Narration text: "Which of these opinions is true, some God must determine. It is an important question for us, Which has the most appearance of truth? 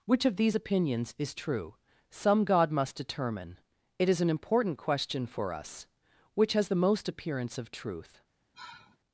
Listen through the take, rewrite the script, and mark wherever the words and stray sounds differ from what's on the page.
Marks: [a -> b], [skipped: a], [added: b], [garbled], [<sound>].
"Which of these opinions is true, some God must determine. It is an important question for us, Which has the most appearance of truth? [sigh]